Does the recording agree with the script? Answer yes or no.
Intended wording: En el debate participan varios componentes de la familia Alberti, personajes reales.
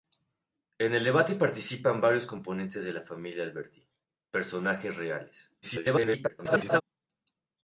no